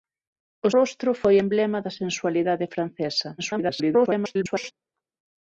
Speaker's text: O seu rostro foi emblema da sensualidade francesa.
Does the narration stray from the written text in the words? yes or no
yes